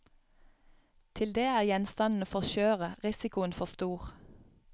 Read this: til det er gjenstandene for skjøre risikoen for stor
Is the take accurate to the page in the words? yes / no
yes